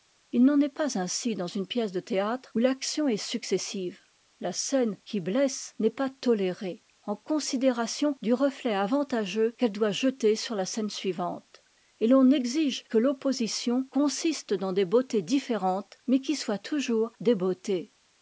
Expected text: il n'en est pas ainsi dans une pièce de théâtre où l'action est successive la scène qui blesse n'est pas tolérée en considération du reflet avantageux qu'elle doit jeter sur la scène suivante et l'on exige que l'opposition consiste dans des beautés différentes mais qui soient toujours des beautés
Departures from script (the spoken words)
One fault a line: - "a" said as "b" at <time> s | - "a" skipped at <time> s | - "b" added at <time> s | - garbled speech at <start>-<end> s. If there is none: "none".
none